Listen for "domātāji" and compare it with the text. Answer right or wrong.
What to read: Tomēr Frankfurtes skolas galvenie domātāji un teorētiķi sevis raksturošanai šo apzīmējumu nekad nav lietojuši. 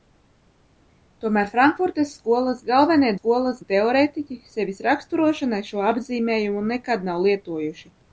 wrong